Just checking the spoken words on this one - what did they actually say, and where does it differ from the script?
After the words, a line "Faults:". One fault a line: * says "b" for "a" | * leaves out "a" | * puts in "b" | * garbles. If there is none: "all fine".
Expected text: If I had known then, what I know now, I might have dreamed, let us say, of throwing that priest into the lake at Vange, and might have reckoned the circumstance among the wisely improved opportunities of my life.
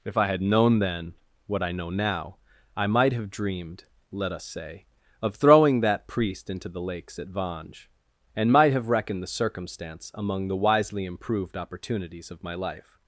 If I had known then, what I know now, I might have dreamed, let us say, of throwing that priest into the lakes at Vange, and might have reckoned the circumstance among the wisely improved opportunities of my life.
Faults:
* says "lakes" for "lake"